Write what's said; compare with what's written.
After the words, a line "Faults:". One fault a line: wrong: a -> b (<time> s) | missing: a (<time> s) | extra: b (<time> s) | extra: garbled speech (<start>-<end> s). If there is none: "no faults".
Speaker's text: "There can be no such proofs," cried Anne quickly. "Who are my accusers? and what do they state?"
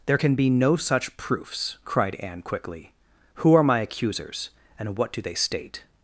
"There can be no such proofs," cried Anne quickly. "Who are my accusers? and what do they state?"
Faults:
no faults